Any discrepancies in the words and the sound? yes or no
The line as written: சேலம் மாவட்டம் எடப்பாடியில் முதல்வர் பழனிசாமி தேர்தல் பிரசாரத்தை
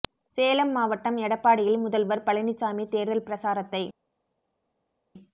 no